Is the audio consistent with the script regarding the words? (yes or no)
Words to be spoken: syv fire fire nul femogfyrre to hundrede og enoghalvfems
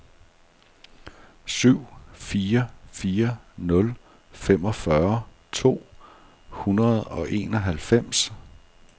yes